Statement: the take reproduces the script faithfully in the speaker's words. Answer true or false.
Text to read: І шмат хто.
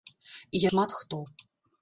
true